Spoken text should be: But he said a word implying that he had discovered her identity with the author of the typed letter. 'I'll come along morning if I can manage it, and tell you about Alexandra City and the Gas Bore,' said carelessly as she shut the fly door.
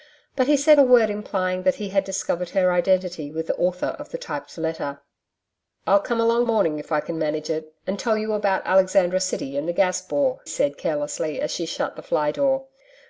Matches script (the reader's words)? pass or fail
pass